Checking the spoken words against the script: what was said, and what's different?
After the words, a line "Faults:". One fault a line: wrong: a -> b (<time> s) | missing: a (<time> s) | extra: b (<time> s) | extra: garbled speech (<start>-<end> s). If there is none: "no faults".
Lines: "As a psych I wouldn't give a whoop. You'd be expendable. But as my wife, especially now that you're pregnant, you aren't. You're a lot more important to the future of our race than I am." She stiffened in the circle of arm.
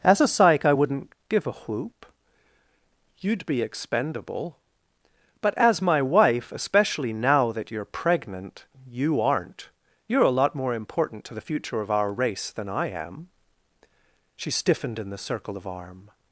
"As a psych I wouldn't give a whoop. You'd be expendable. But as my wife, especially now that you're pregnant, you aren't. You're a lot more important to the future of our race than I am." She stiffened in the circle of arm.
Faults:
no faults